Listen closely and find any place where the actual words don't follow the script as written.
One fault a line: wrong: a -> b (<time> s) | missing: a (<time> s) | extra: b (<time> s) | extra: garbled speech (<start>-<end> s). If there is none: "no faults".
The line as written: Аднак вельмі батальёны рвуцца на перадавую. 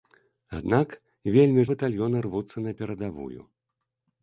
no faults